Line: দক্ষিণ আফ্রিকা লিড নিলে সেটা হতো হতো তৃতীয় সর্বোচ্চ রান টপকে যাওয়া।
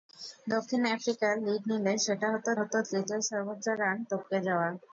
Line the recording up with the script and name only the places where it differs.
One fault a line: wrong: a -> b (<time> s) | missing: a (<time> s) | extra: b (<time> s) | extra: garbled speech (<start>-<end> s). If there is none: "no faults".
no faults